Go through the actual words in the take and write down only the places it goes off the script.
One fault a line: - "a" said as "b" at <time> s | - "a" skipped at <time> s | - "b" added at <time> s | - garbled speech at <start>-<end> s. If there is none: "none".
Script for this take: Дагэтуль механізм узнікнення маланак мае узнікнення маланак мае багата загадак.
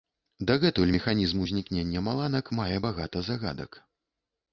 - "узнікнення маланак мае" skipped at 2.8 s